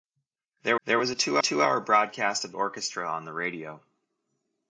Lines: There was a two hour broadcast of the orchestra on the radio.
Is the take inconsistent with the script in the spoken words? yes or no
yes